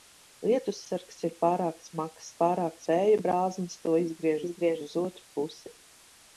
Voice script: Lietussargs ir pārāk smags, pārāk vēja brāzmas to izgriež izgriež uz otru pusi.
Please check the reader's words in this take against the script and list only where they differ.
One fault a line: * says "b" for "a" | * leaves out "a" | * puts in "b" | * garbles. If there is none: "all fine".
all fine